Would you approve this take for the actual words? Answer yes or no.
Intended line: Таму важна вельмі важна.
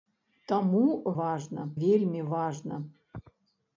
yes